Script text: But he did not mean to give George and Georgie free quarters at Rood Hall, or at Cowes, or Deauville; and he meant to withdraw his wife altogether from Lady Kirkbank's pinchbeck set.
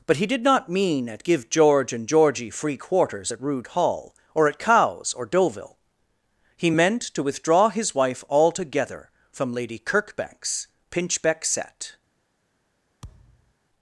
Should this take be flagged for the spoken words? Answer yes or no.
yes